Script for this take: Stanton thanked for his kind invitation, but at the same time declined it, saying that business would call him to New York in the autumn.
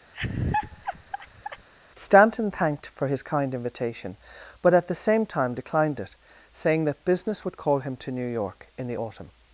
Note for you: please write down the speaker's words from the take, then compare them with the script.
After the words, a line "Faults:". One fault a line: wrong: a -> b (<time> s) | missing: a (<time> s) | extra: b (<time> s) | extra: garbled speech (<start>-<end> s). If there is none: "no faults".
Stanton thanked for his kind invitation, but at the same time declined it, saying that business would call him to New York in the autumn.
Faults:
no faults